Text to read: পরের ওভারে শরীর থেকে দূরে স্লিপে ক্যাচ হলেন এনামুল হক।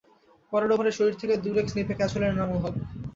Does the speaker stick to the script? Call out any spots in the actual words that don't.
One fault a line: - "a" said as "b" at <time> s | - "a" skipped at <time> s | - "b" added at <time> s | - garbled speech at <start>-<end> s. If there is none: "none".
none